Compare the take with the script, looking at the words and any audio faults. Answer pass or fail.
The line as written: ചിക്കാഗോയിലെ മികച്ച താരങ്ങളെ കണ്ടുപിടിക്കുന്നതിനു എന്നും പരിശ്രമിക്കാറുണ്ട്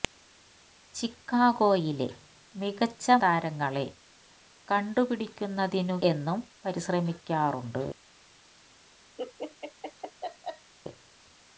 fail